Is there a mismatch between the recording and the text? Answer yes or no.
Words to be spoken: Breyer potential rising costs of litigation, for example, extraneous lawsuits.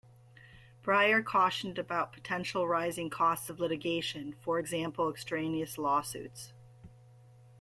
yes